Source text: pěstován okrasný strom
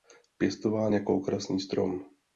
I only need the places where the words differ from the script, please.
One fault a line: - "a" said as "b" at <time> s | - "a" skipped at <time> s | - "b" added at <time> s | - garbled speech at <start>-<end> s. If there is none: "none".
- "jako" added at 0.9 s